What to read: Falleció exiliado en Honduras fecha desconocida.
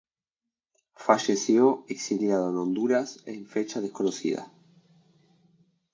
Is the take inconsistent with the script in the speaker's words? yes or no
yes